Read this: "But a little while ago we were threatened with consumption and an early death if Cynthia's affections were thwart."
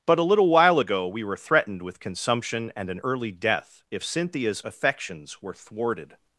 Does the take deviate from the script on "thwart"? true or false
true